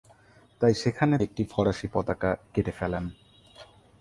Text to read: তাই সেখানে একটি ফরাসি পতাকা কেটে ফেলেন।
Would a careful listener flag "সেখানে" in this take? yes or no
no